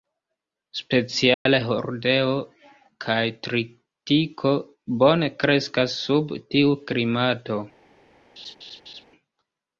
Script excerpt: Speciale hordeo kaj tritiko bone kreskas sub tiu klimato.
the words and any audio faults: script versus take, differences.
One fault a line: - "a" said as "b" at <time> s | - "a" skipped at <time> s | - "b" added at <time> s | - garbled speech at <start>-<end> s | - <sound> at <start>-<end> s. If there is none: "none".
- dropout at 1.3-1.5 s
- laugh at 8.4-9.0 s